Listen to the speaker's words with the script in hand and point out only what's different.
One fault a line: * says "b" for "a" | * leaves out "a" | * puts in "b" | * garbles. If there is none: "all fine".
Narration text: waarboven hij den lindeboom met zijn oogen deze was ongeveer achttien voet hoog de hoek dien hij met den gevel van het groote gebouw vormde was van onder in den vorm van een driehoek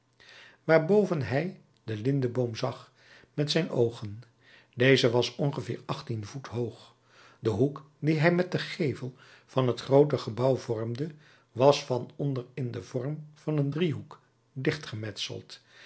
* puts in "zag"